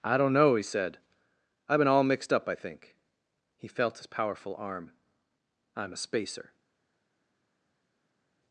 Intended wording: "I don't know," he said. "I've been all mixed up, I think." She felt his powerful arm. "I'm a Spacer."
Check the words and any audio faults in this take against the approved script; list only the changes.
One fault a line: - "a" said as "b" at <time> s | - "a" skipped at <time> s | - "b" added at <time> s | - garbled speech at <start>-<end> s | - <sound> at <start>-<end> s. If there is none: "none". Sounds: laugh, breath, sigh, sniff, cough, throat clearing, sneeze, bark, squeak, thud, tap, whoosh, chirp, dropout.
- "She" said as "He" at 3.6 s